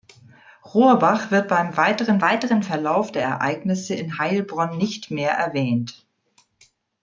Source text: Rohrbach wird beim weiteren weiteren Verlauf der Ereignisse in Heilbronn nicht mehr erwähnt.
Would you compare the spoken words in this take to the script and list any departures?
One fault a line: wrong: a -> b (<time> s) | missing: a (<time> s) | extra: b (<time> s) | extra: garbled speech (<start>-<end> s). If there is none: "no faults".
no faults